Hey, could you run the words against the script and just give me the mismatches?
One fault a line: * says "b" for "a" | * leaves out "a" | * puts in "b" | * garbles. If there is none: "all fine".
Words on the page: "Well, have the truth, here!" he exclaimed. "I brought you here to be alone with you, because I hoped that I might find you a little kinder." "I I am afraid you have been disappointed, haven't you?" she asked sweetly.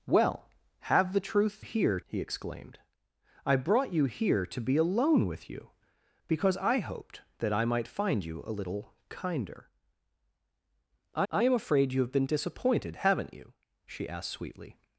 all fine